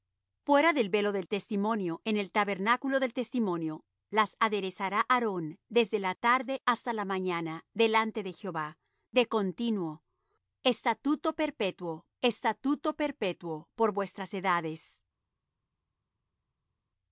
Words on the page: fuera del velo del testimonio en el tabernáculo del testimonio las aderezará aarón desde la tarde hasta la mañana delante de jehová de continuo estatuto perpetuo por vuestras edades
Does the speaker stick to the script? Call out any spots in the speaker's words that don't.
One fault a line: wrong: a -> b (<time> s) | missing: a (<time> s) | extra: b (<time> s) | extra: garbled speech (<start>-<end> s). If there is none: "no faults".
extra: estatuto perpetuo (12.2 s)